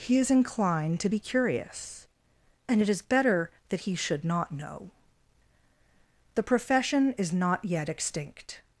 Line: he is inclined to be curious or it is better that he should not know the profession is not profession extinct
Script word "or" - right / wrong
wrong